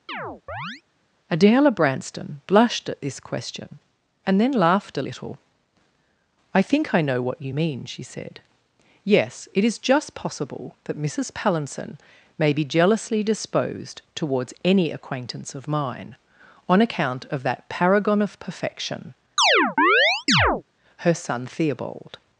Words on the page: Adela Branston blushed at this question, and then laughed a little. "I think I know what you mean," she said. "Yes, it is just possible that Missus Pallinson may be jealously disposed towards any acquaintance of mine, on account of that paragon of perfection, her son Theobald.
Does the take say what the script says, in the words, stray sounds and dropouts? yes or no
no